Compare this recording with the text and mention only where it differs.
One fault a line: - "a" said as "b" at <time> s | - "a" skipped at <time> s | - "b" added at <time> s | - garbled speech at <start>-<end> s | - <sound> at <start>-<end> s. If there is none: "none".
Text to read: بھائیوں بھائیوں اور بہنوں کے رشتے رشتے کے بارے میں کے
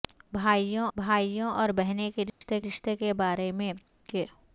- dropout at 2.3-2.4 s